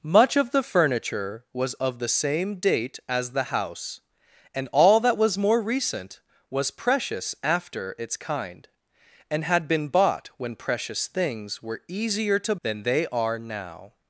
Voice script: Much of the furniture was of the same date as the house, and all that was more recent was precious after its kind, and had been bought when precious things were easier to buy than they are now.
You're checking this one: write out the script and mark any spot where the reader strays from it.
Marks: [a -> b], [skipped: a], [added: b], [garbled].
Much of the furniture was of the same date as the house, and all that was more recent was precious after its kind, and had been bought when precious things were easier to [skipped: buy] than they are now.